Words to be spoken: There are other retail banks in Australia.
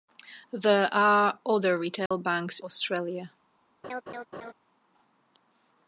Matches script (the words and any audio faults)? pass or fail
fail